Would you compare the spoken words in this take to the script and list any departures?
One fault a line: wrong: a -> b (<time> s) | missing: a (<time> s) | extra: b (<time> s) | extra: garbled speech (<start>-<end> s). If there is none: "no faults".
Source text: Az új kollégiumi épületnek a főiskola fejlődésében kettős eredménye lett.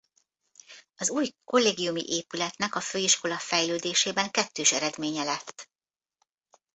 no faults